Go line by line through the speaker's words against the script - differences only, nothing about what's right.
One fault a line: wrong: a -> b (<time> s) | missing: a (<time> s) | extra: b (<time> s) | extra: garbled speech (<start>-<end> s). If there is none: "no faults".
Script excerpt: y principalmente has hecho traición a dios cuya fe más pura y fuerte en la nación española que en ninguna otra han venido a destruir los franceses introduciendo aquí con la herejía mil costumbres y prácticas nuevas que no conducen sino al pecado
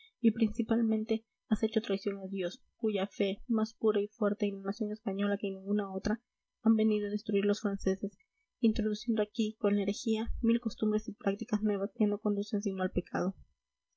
no faults